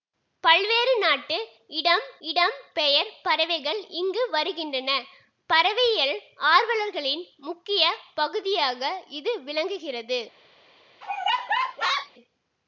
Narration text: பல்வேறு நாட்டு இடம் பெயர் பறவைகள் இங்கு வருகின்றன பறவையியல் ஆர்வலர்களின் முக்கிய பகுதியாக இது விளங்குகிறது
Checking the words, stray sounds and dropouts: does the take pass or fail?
fail